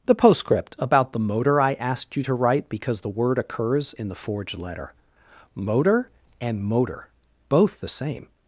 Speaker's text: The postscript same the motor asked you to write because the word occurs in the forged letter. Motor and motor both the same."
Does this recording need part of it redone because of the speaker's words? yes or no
yes